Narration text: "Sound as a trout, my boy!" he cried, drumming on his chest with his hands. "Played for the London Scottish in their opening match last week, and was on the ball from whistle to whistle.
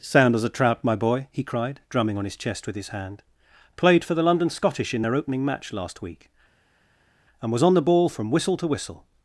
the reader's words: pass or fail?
fail